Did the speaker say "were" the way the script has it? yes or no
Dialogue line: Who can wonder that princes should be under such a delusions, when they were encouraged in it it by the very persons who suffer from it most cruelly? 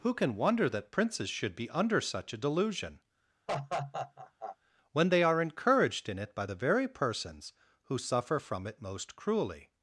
no